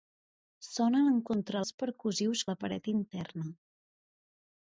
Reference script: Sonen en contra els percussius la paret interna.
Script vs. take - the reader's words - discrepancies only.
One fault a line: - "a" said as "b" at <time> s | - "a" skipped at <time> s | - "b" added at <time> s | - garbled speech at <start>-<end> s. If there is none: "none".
none